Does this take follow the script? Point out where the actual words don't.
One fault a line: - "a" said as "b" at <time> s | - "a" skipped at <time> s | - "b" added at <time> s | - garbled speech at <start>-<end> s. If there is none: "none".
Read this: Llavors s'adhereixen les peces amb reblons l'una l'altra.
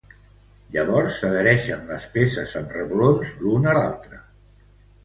none